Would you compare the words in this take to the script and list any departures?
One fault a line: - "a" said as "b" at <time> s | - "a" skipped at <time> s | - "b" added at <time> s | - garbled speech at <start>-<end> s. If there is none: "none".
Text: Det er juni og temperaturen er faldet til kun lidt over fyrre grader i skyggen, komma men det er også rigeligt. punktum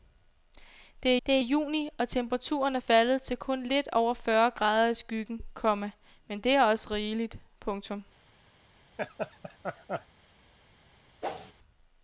- "det" added at 1.3 s